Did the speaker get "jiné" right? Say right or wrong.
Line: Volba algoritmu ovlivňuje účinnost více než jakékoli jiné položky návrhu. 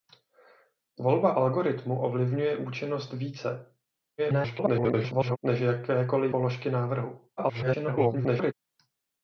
wrong